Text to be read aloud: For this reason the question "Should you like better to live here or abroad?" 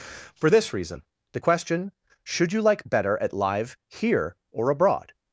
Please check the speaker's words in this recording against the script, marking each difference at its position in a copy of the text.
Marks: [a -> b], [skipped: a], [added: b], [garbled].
For this reason the question "Should you like better [to -> at] live here or abroad?"